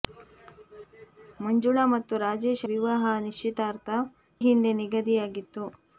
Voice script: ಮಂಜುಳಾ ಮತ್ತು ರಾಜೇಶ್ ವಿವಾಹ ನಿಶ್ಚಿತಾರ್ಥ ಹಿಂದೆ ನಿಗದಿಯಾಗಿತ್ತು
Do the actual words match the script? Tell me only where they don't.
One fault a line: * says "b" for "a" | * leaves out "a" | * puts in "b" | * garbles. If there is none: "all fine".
all fine